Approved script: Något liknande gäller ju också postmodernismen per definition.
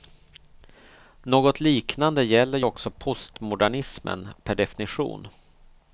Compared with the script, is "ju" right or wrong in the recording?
right